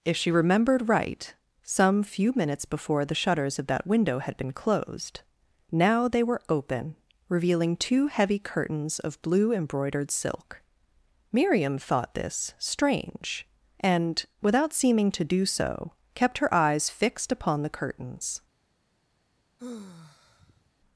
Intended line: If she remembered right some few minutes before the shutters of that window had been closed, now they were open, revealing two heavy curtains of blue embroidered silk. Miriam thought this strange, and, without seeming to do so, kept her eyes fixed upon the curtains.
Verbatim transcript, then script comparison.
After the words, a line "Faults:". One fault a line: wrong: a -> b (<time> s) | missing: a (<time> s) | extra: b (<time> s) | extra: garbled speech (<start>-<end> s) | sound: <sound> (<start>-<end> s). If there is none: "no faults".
If she remembered right some few minutes before the shutters of that window had been closed, now they were open, revealing two heavy curtains of blue embroidered silk. Miriam thought this strange, and, without seeming to do so, kept her eyes fixed upon the curtains.
Faults:
sound: sigh (19.6-20.7 s)